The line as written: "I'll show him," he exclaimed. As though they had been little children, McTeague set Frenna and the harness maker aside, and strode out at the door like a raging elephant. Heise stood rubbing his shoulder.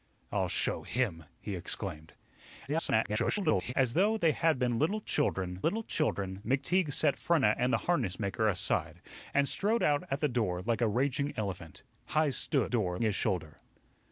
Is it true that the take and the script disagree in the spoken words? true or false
true